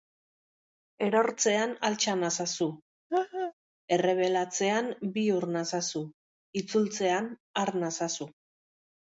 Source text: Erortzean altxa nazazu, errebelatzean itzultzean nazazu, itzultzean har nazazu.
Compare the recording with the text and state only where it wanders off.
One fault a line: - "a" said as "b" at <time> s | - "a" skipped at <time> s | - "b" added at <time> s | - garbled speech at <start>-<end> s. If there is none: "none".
- "itzultzean" said as "bihur" at 5.2 s